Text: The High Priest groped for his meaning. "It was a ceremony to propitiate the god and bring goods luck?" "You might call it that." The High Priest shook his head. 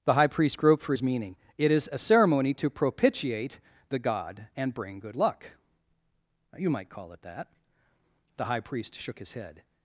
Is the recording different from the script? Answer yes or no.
yes